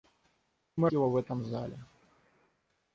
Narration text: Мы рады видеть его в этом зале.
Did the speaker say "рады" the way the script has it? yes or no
no